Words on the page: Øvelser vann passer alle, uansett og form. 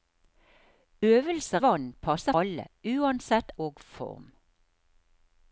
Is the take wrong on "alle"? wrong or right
right